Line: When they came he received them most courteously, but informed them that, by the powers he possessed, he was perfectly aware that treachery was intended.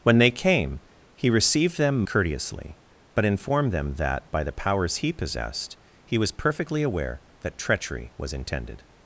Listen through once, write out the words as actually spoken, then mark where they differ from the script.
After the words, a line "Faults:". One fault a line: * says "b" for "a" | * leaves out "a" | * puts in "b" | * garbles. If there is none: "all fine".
When they came he received them courteously, but informed them that, by the powers he possessed, he was perfectly aware that treachery was intended.
Faults:
* leaves out "most"